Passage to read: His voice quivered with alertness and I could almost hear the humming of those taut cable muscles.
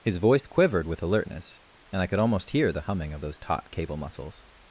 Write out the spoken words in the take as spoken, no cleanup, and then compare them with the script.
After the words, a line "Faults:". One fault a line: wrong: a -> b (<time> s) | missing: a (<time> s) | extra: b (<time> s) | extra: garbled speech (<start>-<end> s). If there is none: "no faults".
His voice quivered with alertness and I could almost hear the humming of those taut cable muscles.
Faults:
no faults